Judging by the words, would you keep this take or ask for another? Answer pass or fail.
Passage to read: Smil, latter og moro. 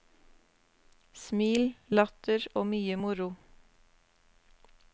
fail